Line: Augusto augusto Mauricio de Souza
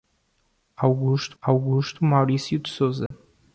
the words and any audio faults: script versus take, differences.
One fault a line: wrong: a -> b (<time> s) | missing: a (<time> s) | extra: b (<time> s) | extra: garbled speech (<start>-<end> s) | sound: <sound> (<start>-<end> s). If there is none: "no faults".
sound: dropout (3.1-3.1 s)